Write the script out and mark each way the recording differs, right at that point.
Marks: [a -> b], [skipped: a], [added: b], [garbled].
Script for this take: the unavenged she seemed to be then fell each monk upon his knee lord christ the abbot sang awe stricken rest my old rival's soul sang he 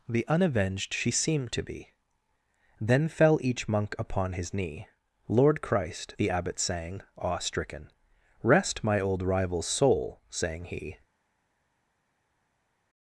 the unavenged she seemed to be then fell each monk upon his knee lord christ the abbot sang awe stricken rest my old rival's soul sang he